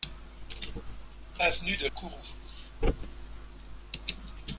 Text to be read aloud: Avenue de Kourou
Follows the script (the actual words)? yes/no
yes